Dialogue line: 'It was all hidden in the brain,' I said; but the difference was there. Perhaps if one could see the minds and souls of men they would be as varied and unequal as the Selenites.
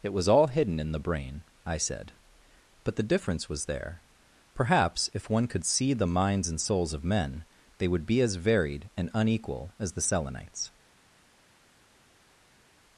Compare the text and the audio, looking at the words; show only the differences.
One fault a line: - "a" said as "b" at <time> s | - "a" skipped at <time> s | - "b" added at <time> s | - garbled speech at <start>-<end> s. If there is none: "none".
none